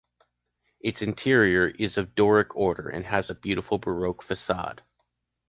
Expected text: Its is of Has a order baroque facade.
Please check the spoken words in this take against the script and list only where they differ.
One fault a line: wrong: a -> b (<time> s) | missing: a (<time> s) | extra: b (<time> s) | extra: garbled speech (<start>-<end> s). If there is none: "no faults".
extra: interior (1.0 s)
extra: Doric order and (2.1 s)
wrong: order -> beautiful (3.3 s)